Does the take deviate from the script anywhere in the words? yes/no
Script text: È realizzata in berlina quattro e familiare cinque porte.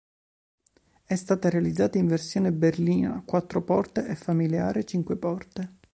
yes